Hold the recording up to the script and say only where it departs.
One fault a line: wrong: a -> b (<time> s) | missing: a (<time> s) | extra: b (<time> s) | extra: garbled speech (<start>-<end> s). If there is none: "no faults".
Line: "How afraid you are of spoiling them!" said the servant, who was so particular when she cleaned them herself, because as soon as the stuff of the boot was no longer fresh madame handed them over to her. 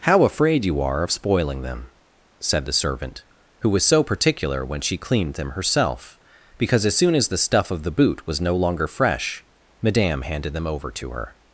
no faults